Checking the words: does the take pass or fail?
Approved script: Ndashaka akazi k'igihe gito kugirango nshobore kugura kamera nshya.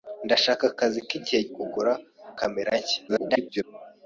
fail